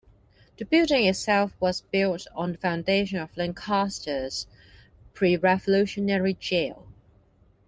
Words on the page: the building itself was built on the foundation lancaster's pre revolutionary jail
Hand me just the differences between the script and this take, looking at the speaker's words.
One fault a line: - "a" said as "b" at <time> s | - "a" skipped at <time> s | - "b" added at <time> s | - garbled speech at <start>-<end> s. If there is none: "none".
- "of" added at 3.2 s